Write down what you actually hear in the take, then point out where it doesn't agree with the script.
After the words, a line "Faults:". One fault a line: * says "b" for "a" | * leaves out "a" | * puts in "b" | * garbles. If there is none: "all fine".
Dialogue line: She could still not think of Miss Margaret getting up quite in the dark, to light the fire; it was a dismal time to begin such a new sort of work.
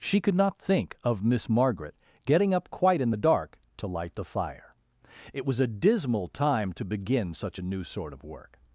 She could not think of Miss Margaret getting up quite in the dark, to light the fire; it was a dismal time to begin such a new sort of work.
Faults:
* leaves out "still"